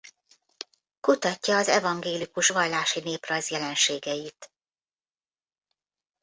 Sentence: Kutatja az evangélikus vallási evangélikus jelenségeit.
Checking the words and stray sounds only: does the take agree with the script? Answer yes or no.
no